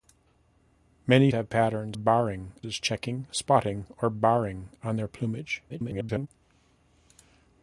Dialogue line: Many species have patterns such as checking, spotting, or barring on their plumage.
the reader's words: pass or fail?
fail